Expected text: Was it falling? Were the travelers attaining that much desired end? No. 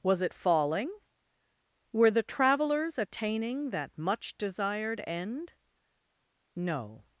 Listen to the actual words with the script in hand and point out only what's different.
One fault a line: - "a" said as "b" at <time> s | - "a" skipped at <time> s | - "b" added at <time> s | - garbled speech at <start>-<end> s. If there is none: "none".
none